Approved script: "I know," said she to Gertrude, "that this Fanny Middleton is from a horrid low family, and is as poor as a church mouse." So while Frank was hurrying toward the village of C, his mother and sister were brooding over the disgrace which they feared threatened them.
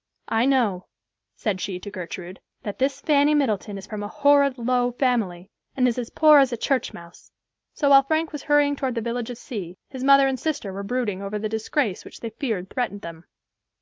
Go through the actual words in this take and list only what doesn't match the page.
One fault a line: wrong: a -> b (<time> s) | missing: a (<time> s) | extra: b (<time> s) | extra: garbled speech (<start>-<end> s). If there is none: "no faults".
no faults